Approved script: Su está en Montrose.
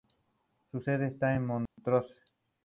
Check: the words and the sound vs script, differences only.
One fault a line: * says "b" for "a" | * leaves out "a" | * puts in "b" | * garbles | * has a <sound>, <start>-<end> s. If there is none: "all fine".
* puts in "sede"
* has a dropout, 1.7-1.8 s